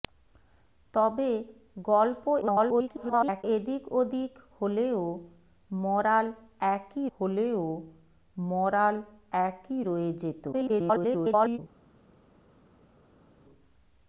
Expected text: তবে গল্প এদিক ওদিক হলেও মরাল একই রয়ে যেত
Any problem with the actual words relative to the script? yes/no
yes